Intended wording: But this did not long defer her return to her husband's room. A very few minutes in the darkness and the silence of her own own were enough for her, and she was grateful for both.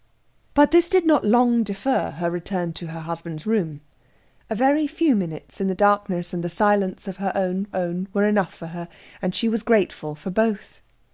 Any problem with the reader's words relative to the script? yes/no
no